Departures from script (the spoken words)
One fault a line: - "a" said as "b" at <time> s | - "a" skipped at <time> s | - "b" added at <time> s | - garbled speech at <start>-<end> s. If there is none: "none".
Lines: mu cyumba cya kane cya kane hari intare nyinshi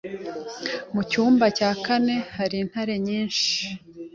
- "cya kane" skipped at 2.1 s